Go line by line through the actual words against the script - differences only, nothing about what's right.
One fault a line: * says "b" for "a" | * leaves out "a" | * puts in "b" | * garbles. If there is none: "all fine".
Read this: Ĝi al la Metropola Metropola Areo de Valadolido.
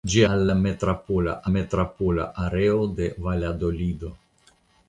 all fine